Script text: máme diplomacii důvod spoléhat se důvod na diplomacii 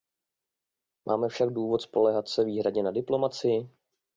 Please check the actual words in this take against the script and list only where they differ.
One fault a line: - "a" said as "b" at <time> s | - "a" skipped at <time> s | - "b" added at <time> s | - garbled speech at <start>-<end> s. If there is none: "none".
- "diplomacii" said as "však" at 1.3 s
- "důvod" said as "výhradně" at 2.4 s